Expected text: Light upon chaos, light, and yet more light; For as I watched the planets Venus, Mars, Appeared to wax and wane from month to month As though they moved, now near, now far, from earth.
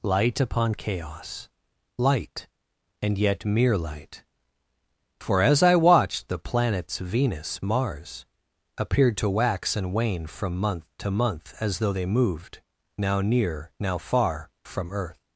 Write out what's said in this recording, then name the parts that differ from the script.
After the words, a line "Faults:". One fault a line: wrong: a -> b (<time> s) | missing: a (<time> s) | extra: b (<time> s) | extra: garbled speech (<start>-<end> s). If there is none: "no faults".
Light upon chaos, light, and yet mere light; For as I watched the planets Venus, Mars, Appeared to wax and wane from month to month As though they moved, now near, now far, from earth.
Faults:
wrong: more -> mere (3.5 s)